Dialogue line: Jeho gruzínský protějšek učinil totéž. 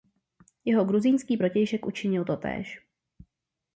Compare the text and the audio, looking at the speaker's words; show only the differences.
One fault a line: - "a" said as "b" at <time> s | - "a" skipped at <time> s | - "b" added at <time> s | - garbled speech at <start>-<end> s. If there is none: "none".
none